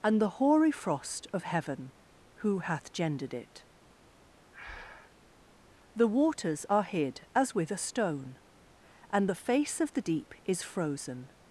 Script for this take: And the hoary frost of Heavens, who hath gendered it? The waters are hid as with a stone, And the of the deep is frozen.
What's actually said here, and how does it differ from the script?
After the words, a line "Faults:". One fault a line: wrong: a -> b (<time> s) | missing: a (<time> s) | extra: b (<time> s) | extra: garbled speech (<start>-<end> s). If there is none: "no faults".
And the hoary frost of Heaven, who hath gendered it? The waters are hid as with a stone, And the face of the deep is frozen.
Faults:
wrong: Heavens -> Heaven (1.4 s)
extra: face (9.4 s)